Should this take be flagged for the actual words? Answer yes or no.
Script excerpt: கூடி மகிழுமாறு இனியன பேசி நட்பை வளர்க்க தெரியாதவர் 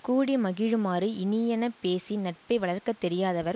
no